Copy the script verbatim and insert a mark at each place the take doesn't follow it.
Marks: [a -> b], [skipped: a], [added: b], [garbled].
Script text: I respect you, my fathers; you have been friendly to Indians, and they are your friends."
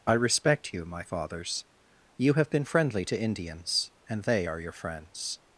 I respect you, my fathers; you have been friendly to Indians, and they are your friends."